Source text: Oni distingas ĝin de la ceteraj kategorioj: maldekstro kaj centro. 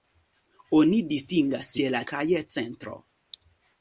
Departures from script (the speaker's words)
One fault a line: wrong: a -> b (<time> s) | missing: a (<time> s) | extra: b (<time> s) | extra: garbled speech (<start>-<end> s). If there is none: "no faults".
missing: ĝin (1.7 s)
missing: ceteraj kategorioj maldekstro (2.0 s)